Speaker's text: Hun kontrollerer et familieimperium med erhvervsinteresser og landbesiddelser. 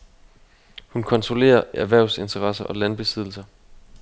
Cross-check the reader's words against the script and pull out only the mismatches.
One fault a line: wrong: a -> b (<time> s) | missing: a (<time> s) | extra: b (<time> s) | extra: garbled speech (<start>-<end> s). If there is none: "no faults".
missing: et familieimperium med (1.6 s)